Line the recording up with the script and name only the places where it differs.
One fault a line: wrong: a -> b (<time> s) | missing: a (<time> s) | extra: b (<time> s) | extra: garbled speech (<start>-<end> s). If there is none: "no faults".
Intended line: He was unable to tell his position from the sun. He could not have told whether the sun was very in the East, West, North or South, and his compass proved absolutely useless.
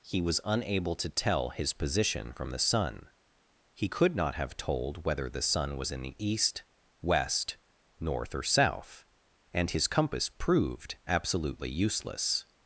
missing: very (5.9 s)